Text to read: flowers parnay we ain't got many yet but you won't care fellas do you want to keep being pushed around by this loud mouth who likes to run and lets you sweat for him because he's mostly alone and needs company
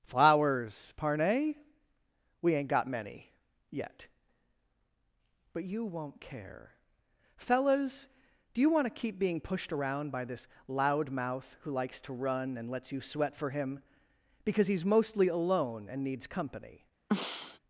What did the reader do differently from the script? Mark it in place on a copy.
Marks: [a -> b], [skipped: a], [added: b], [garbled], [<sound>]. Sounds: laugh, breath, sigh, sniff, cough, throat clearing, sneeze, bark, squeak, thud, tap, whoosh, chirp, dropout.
flowers parnay we ain't got many yet but you won't care fellas do you want to keep being pushed around by this loud mouth who likes to run and lets you sweat for him because he's mostly alone and needs company [throat clearing]